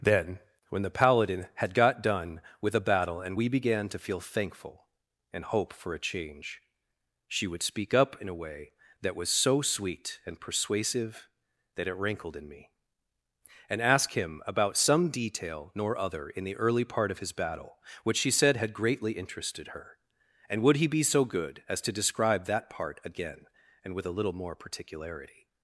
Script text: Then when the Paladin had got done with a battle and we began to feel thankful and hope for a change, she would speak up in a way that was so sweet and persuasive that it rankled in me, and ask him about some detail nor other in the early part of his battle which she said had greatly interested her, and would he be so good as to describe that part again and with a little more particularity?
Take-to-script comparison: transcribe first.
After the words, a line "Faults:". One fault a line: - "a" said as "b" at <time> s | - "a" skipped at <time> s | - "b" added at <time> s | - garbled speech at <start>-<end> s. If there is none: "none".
Then when the Paladin had got done with a battle and we began to feel thankful and hope for a change, she would speak up in a way that was so sweet and persuasive that it rankled in me, and ask him about some detail nor other in the early part of his battle which she said had greatly interested her, and would he be so good as to describe that part again and with a little more particularity?
Faults:
none